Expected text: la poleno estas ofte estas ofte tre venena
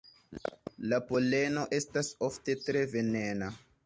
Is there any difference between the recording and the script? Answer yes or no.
yes